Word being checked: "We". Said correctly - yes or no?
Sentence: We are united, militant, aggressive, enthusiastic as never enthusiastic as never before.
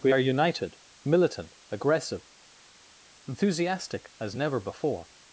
yes